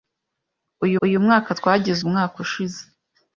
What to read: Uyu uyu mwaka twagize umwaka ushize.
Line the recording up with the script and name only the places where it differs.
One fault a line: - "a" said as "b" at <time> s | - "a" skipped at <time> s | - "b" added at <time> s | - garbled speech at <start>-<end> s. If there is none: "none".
none